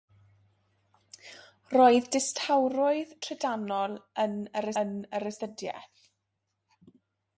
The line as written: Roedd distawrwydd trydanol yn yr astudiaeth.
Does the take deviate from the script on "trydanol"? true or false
false